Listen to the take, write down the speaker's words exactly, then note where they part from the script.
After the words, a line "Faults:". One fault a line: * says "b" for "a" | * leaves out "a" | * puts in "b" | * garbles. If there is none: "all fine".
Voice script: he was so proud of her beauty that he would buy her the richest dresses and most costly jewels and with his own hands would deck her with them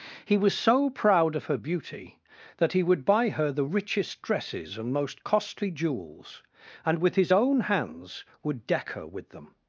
he was so proud of her beauty that he would buy her the richest dresses and most costly jewels and with his own hands would deck her with them
Faults:
all fine